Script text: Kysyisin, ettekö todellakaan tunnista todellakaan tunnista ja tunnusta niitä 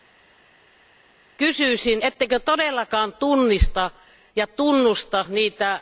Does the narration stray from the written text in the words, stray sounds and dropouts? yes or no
yes